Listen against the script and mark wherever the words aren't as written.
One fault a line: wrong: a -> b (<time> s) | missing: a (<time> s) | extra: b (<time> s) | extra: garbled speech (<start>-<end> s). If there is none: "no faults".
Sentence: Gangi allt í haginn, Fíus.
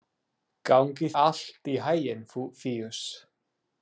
no faults